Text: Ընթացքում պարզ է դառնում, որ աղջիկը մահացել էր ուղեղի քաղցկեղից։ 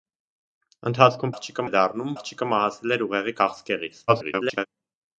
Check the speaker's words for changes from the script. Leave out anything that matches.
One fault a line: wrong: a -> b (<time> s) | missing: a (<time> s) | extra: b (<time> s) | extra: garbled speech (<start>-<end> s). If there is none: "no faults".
wrong: պարզ -> աղջիկը (1.3 s)
missing: որ (2.2 s)
extra: garbled speech (4.1-4.7 s)